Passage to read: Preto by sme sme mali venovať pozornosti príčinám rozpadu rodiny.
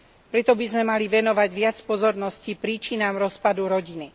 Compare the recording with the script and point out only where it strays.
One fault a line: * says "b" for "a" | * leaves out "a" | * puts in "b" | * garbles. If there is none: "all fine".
* leaves out "sme"
* puts in "viac"